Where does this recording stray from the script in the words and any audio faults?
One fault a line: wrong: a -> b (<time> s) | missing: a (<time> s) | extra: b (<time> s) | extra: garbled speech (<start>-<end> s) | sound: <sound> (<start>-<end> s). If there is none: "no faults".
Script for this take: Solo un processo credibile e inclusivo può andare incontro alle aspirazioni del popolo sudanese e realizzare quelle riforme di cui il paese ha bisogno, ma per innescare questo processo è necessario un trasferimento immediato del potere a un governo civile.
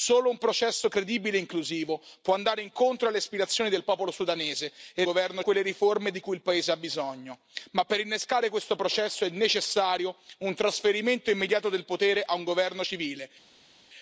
wrong: realizzare -> governo (5.0 s)